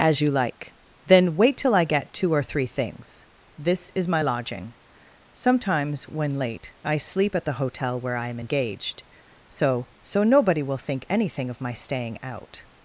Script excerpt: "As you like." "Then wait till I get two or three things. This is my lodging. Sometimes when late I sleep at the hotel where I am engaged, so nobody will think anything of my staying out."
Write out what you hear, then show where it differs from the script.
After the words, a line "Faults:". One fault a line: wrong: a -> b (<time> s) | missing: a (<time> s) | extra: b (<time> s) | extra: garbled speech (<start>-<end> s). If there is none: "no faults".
"As you like." "Then wait till I get two or three things. This is my lodging. Sometimes when late I sleep at the hotel where I am engaged, so so nobody will think anything of my staying out."
Faults:
extra: so (10.0 s)